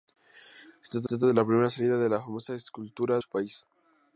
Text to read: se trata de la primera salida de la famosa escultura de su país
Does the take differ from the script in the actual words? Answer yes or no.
yes